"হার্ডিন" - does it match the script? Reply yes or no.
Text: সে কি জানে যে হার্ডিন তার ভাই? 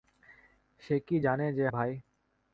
no